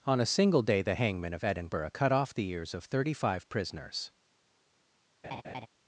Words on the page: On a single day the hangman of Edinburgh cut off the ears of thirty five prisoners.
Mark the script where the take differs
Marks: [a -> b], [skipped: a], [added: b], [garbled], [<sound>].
On a single day the hangman of Edinburgh cut off the ears of thirty five prisoners. [laugh]